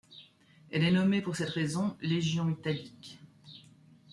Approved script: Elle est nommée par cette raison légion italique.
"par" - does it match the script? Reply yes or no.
no